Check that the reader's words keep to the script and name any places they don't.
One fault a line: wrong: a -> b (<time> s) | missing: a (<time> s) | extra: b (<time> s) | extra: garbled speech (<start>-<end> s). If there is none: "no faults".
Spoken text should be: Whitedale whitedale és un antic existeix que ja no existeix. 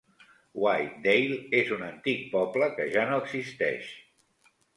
missing: whitedale (1.4 s)
wrong: existeix -> poble (2.3 s)